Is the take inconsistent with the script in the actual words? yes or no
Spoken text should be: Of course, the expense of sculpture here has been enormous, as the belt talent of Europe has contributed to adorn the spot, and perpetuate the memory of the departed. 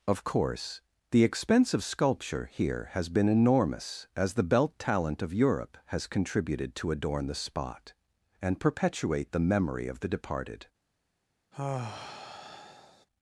no